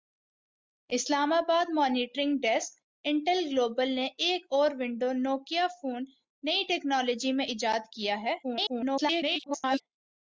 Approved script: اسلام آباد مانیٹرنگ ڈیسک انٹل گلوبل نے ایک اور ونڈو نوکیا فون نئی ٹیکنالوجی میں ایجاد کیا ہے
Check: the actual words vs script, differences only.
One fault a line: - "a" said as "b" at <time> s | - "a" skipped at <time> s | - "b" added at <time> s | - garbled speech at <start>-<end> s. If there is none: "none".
- garbled speech at 8.4-9.8 s